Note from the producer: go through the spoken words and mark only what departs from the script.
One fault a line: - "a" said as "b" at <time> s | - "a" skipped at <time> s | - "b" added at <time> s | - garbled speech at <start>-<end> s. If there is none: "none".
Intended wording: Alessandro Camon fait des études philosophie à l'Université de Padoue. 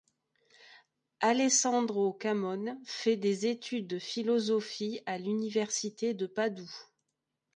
- "de" added at 3.9 s